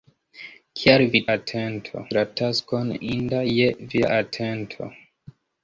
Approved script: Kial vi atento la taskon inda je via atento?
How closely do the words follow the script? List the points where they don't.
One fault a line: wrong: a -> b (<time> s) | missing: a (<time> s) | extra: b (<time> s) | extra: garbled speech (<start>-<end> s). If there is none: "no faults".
no faults